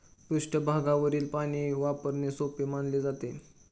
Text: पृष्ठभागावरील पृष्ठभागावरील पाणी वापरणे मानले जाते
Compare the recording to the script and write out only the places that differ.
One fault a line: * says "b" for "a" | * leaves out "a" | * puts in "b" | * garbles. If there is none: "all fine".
* leaves out "पृष्ठभागावरील"
* puts in "सोपे"